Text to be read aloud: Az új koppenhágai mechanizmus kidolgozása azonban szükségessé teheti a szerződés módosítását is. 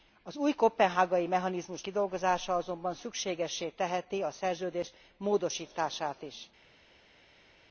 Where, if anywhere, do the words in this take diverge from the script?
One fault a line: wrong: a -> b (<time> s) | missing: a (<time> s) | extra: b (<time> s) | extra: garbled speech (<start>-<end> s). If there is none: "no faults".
no faults